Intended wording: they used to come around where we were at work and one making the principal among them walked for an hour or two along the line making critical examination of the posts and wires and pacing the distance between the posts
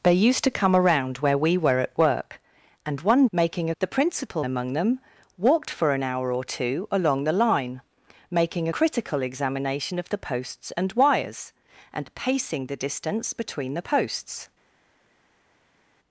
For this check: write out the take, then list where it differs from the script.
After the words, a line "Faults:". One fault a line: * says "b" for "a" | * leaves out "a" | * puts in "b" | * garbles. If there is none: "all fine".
they used to come around where we were at work and one making the principal among them walked for an hour or two along the line making critical examination of the posts and wires and pacing the distance between the posts
Faults:
all fine